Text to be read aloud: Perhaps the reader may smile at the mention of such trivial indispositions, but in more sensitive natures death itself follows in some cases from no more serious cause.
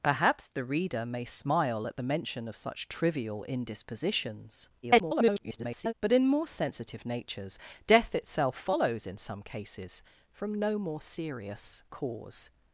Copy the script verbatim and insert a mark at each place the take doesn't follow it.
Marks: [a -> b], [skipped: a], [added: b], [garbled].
Perhaps the reader may smile at the mention of such trivial indispositions, [garbled] but in more sensitive natures death itself follows in some cases from no more serious cause.